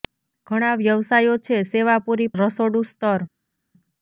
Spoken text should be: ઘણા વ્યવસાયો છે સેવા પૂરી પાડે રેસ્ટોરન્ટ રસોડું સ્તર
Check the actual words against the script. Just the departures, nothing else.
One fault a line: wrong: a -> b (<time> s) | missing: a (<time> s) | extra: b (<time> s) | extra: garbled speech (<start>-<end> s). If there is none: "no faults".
missing: પાડે રેસ્ટોરન્ટ (2.3 s)